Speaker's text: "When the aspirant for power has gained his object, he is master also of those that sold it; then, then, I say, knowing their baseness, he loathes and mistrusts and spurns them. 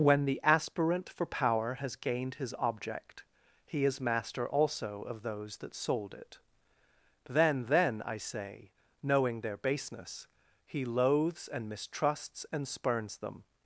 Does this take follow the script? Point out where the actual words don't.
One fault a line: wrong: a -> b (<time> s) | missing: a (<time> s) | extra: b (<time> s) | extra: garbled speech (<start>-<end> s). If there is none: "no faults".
no faults